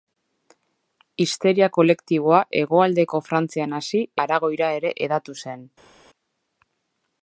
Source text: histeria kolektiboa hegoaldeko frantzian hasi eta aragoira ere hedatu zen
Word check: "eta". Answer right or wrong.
wrong